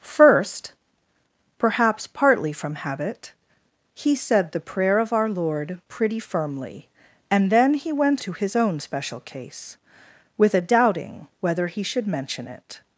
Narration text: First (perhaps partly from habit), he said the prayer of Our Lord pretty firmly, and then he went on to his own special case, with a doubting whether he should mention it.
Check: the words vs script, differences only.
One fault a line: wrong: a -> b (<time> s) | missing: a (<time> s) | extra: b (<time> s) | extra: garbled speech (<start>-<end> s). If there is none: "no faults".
missing: on (8.2 s)